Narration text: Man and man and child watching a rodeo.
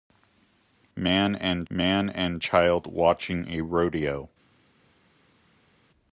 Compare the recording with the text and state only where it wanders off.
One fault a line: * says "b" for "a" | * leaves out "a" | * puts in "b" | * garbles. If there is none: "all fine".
all fine